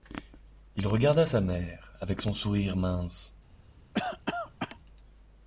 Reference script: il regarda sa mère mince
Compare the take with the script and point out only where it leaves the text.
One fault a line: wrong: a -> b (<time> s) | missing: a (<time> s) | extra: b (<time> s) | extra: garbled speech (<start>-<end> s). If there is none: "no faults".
extra: avec son sourire (2.0 s)